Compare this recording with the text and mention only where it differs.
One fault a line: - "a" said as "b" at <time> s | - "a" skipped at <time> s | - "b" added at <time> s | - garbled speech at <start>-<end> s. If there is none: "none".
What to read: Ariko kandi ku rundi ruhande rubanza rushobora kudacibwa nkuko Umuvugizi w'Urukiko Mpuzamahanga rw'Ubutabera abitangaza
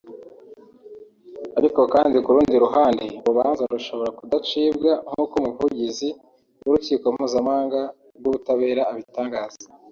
none